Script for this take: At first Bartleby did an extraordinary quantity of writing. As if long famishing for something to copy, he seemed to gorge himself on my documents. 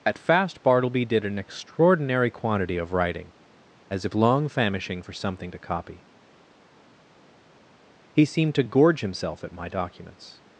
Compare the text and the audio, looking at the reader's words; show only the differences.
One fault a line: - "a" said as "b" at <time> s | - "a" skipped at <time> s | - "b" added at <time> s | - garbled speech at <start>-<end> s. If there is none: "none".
- "first" said as "fast" at 0.2 s
- "on" said as "at" at 9.4 s